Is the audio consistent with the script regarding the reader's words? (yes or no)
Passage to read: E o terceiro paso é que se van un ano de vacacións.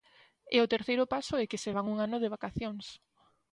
yes